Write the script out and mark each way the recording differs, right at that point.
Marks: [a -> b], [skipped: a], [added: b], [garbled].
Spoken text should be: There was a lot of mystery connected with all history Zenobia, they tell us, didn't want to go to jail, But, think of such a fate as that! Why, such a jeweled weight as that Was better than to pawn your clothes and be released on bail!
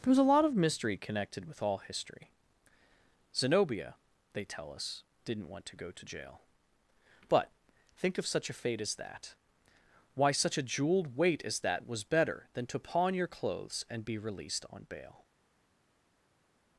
There was a lot of mystery connected with all history Zenobia, they tell us, didn't want to go to jail, But, think of such a fate as that! Why, such a jeweled weight as that Was better than to pawn your clothes and be released on bail!